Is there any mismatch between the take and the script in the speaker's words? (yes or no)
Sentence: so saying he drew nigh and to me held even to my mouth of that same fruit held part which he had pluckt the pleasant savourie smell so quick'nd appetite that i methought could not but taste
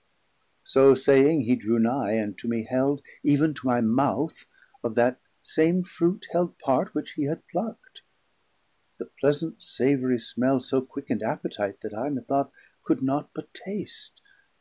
no